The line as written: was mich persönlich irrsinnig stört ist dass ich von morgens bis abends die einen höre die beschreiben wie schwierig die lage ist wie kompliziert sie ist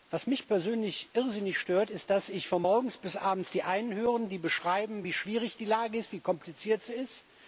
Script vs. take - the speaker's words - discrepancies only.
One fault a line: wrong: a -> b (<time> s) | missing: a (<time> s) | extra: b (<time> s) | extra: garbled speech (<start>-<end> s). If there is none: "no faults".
no faults